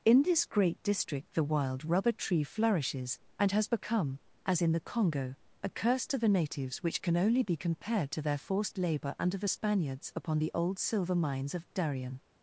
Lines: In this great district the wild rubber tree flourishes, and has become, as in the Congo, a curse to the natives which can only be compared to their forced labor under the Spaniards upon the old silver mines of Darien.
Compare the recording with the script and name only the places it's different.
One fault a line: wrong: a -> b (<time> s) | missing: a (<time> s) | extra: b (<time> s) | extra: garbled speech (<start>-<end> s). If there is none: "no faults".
no faults